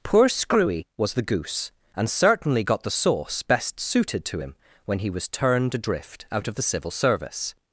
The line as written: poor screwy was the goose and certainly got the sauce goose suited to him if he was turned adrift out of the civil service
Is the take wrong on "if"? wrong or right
wrong